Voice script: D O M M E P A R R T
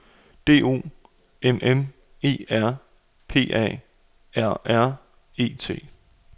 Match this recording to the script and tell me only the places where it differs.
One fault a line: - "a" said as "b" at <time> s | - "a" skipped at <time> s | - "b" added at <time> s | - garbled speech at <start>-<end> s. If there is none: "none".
- "R" added at 2.5 s
- "E" added at 5.4 s